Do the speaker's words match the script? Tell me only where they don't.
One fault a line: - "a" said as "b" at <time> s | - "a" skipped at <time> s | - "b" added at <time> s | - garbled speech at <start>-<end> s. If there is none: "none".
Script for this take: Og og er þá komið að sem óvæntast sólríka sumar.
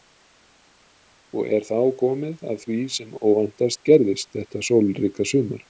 - "og" skipped at 1.5 s
- "því" added at 2.7 s
- "gerðist þetta" added at 3.9 s